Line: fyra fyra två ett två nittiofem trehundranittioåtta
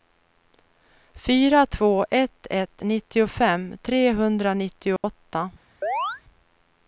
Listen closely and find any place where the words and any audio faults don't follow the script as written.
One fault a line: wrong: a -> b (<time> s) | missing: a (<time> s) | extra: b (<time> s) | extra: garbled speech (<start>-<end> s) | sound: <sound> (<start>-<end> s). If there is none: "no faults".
missing: fyra (1.6 s)
wrong: två -> ett (2.5 s)
sound: dropout (5.0-5.0 s)
sound: chirp (5.8-6.2 s)